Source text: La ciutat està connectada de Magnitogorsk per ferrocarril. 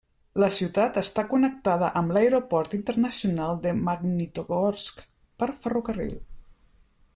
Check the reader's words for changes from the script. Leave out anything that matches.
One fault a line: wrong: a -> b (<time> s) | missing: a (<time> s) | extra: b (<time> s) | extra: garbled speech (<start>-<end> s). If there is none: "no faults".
extra: amb l'Aeroport Internacional (2.0 s)